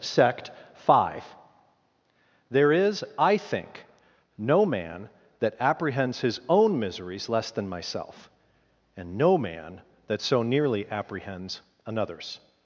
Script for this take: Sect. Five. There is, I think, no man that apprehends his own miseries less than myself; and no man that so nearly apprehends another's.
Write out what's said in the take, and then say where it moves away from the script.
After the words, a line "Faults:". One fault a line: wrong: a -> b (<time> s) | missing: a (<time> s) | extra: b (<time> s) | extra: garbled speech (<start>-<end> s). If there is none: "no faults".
Sect. Five. There is, I think, no man that apprehends his own miseries less than myself; and no man that so nearly apprehends another's.
Faults:
no faults